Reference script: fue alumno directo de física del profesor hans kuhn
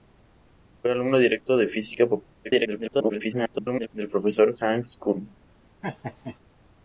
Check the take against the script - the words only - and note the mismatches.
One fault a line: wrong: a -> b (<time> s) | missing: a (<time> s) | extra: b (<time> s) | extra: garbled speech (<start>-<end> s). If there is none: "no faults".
extra: garbled speech (2.4-3.9 s)